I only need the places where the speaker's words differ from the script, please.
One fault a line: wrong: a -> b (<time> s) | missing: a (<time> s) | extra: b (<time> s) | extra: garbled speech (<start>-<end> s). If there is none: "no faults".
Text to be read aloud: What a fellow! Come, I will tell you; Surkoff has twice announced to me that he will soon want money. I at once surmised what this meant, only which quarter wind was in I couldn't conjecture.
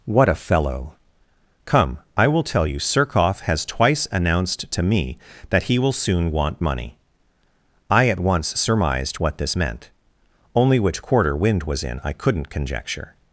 no faults